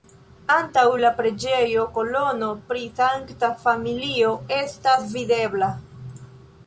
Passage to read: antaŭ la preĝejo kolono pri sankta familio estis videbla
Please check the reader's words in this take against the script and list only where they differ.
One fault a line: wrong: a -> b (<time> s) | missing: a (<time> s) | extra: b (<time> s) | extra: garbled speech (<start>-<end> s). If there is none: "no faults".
wrong: estis -> estas (4.6 s)